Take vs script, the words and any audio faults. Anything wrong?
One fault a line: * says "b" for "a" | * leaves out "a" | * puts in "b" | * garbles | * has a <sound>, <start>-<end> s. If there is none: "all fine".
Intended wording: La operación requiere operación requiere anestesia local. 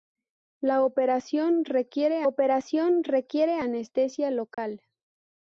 * has a dropout, 4.5-4.6 s